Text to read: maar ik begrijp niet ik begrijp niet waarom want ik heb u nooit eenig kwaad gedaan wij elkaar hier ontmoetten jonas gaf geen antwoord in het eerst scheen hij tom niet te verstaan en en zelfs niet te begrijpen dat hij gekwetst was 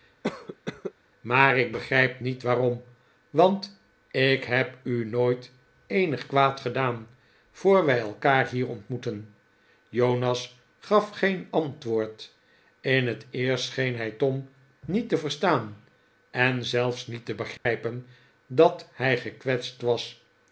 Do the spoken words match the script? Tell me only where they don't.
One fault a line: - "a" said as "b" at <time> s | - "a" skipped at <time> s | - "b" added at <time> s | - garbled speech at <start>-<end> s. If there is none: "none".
- "ik begrijp niet" skipped at 2.4 s
- "voor" added at 7.5 s
- "en" skipped at 16.6 s